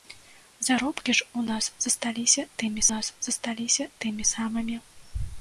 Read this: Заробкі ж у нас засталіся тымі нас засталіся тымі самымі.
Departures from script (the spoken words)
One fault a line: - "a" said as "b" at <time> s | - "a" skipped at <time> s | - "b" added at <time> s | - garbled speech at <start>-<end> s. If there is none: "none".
none